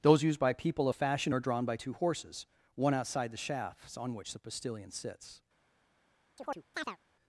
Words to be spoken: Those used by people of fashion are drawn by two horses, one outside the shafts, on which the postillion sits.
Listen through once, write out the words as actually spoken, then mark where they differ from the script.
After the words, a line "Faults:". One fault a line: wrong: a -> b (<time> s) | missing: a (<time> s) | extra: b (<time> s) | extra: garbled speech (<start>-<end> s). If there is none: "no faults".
Those used by people of fashion are drawn by two horses, one outside the shafts, on which the postillion sits.
Faults:
no faults